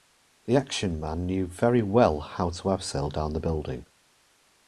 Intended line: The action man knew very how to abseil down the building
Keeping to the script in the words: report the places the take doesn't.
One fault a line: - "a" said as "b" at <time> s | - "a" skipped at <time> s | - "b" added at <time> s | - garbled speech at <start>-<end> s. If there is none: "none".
- "well" added at 1.8 s